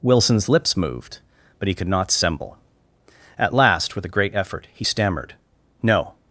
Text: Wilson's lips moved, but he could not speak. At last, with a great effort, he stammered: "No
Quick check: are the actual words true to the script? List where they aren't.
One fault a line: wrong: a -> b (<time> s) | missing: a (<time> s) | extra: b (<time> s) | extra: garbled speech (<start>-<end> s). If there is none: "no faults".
wrong: speak -> semble (2.1 s)